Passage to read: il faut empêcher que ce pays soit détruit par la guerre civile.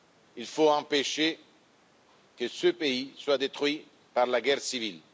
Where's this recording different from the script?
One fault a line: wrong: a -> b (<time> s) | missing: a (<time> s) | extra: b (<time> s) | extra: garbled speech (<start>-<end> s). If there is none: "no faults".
no faults